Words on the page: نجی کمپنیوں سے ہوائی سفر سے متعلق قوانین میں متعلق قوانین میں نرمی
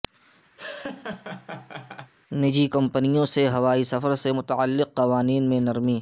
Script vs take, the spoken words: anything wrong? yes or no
yes